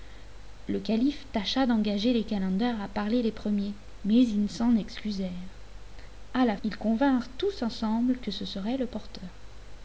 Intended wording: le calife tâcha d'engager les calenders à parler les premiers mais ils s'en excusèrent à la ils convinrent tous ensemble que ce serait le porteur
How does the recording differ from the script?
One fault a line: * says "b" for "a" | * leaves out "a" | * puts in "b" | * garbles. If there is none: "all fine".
all fine